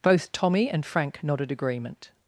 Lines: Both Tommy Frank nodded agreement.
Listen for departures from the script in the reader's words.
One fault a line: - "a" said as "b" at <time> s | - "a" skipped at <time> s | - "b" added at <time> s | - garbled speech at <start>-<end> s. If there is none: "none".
- "and" added at 0.7 s